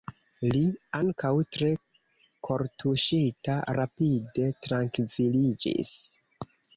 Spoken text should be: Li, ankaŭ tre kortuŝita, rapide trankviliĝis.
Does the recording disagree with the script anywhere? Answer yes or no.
no